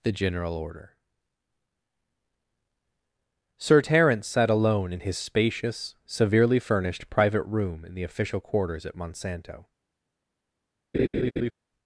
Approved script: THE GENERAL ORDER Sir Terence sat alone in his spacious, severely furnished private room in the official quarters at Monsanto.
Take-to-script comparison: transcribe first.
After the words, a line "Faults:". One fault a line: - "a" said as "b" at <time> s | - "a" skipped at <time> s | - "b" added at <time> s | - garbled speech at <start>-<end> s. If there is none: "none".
THE GENERAL ORDER Sir Terence sat alone in his spacious, severely furnished private room in the official quarters at Monsanto.
Faults:
none